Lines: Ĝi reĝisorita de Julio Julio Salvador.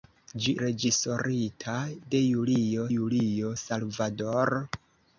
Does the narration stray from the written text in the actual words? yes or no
no